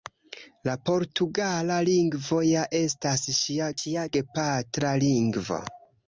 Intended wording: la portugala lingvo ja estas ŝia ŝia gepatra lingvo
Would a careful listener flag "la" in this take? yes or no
no